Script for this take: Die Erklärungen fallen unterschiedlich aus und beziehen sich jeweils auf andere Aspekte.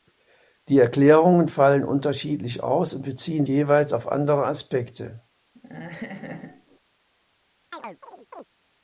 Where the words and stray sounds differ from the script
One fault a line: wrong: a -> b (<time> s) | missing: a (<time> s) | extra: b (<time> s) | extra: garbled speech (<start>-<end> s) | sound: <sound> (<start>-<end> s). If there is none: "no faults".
missing: sich (3.4 s)
sound: laugh (5.5-6.8 s)
sound: chirp (7.7-8.5 s)